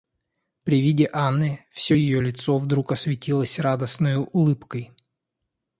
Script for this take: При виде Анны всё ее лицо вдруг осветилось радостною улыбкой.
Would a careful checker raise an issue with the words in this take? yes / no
no